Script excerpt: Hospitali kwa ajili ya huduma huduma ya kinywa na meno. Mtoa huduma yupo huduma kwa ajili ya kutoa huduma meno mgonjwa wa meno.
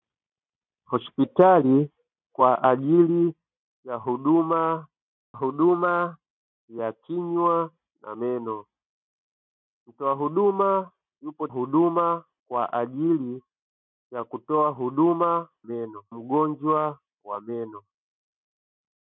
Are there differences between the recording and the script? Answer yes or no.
no